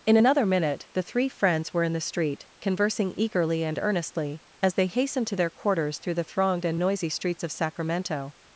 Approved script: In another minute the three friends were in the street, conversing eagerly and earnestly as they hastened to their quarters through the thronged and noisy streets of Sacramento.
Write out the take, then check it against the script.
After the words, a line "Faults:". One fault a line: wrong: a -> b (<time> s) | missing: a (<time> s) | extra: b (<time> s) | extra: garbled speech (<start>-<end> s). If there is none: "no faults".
In another minute the three friends were in the street, conversing eagerly and earnestly as they hastened to their quarters through the thronged and noisy streets of Sacramento.
Faults:
no faults